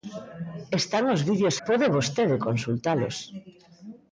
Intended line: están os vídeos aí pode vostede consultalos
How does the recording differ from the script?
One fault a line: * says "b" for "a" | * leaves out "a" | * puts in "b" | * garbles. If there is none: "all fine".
* leaves out "aí"